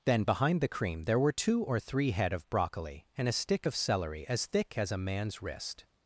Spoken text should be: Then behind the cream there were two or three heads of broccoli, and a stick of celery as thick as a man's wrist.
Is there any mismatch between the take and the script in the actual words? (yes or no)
yes